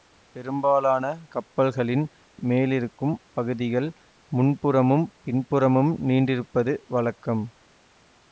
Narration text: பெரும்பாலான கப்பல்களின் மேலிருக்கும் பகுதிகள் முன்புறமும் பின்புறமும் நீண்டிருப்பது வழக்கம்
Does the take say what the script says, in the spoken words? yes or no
yes